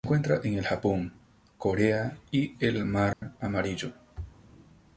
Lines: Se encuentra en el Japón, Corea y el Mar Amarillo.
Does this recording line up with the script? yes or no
yes